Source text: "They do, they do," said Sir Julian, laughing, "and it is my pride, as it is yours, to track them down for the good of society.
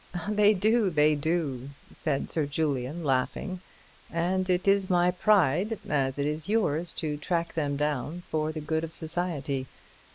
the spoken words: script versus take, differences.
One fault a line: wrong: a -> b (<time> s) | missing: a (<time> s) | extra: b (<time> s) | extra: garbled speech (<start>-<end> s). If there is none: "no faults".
no faults